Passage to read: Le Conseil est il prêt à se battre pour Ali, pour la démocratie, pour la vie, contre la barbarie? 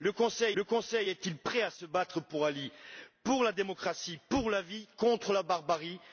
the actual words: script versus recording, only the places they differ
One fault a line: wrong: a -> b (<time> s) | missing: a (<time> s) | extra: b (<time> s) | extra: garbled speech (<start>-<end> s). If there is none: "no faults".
extra: le Conseil (0.5 s)